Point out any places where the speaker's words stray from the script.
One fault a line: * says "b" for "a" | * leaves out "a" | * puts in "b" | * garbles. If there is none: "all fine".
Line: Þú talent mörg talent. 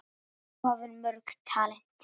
* says "hafðir" for "talent"